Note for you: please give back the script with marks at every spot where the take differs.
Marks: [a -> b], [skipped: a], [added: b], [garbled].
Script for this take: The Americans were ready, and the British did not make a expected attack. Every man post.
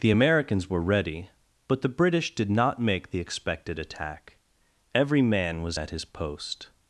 The Americans were ready, [and -> but] the British did not make [a -> the] expected attack. Every man [added: was at his] post.